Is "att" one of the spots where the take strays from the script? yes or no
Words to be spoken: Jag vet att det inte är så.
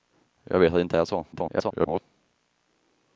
no